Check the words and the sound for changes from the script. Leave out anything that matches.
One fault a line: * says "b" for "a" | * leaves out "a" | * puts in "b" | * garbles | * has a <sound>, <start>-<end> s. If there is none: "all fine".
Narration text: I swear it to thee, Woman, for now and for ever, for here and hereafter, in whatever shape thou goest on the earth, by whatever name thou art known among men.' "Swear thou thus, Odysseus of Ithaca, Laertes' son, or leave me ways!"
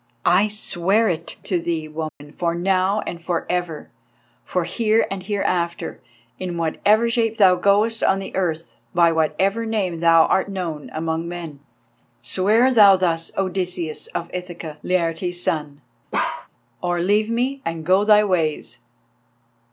* has a dropout, 2.1-2.2 s
* has a bark, 16.1-16.5 s
* puts in "and go thy"